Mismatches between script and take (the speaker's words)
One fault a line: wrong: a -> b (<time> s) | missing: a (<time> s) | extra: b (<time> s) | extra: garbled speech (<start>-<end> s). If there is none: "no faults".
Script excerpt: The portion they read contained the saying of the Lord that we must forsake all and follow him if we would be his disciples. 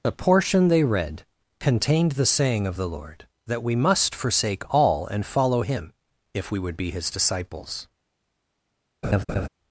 no faults